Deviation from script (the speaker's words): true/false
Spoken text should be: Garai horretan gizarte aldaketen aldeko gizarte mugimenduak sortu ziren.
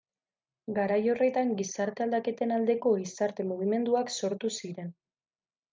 false